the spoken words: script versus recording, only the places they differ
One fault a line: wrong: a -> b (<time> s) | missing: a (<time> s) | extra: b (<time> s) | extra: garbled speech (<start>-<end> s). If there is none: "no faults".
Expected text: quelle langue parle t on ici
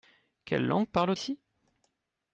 missing: t on (1.1 s)